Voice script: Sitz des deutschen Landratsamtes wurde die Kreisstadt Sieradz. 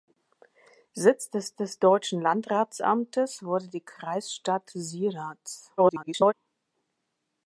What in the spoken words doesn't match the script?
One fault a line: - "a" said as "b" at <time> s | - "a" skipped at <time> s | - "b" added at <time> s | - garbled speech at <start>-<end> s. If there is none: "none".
- "des" added at 1.5 s
- garbled speech at 5.8-6.3 s